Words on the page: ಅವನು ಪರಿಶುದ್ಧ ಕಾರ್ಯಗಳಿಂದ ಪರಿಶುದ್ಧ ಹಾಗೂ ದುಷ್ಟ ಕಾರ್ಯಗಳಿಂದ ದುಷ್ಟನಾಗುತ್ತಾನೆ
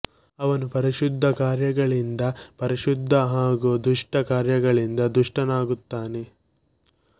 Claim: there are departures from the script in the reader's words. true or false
false